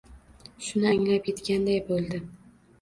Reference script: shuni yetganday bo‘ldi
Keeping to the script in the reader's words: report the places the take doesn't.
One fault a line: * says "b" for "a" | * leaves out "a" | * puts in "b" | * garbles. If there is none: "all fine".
* puts in "anglab"